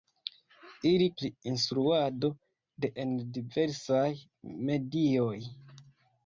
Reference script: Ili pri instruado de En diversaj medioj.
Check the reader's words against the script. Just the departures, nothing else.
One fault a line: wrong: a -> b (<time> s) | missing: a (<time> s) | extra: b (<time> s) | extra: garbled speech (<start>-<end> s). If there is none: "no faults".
no faults